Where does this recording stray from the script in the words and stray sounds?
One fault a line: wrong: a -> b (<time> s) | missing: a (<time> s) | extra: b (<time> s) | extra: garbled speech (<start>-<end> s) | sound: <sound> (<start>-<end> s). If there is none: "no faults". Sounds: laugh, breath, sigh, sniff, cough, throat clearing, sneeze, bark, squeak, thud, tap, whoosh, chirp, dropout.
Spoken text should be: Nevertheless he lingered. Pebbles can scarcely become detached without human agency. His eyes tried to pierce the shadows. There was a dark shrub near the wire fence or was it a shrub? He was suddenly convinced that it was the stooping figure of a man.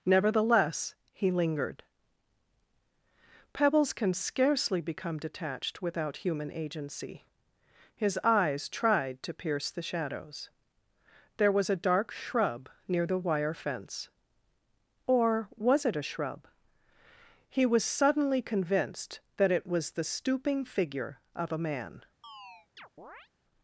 sound: chirp (22.2-23.3 s)